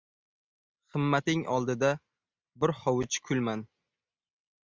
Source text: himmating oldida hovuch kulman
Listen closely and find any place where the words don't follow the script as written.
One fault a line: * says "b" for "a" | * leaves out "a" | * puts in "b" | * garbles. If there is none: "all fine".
* puts in "bir"